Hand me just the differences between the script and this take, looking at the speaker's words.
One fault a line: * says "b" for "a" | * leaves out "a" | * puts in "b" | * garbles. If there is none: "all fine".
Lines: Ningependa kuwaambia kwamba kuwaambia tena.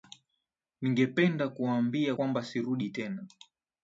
* says "sirudi" for "kuwaambia"